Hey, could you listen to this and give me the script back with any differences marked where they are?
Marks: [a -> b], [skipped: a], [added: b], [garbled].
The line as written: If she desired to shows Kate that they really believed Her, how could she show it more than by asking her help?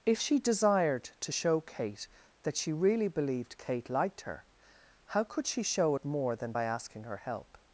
If she desired to [shows -> show] Kate that [they -> she] really believed [added: Kate liked] Her, how could she show it more than by asking her help?